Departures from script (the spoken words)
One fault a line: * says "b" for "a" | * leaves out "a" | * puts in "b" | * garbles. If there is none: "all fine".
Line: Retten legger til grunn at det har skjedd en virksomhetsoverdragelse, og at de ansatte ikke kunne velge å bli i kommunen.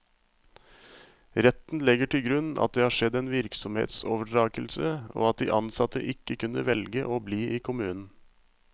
all fine